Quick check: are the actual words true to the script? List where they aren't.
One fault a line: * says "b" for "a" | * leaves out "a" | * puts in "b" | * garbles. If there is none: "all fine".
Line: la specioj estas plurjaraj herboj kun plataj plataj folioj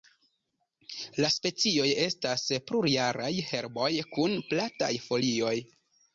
* leaves out "plataj"